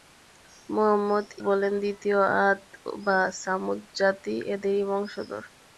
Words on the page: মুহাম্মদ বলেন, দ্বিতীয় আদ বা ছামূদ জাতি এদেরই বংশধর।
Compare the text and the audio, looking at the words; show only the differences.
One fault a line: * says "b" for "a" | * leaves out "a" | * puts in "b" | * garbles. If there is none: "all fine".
all fine